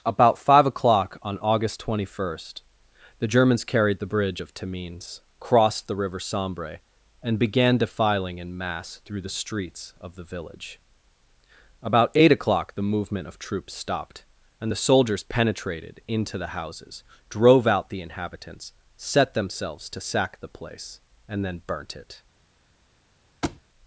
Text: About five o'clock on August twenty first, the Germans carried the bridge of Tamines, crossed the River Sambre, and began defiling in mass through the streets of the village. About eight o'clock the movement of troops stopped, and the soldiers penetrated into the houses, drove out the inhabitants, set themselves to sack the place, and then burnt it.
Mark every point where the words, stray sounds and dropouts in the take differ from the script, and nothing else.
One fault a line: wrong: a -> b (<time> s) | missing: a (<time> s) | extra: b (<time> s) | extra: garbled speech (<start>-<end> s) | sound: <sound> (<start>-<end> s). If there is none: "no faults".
sound: thud (23.4-23.6 s)